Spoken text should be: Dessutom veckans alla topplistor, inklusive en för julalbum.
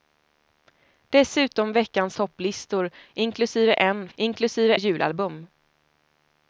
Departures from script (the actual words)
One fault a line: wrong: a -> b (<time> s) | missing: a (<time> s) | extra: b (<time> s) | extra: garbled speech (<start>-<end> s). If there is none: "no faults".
missing: alla (2.2 s)
wrong: för -> inklusive (4.1 s)